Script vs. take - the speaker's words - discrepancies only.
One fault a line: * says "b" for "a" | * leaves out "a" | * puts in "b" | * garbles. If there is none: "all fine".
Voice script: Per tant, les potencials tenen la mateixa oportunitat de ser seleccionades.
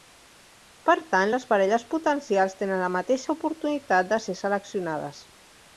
* puts in "parelles"